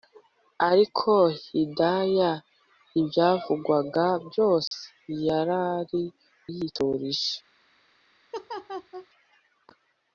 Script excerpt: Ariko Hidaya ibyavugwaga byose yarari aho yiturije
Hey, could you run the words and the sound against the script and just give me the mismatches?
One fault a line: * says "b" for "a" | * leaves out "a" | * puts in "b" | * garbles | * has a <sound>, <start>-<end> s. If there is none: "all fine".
* has a dropout, 4.7-4.7 s
* leaves out "aho"
* has a laugh, 8.3-9.1 s